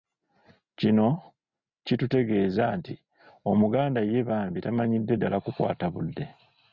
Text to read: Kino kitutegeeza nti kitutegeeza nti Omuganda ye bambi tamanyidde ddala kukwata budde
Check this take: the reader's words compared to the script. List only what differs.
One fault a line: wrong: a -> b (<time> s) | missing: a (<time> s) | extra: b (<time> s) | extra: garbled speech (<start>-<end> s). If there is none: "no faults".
missing: kitutegeeza nti (2.9 s)